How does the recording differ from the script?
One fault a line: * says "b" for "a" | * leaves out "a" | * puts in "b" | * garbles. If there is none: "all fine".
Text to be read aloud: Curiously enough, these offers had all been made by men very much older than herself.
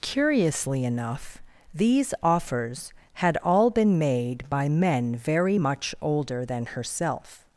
all fine